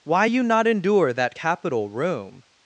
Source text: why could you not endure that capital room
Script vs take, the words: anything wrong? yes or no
yes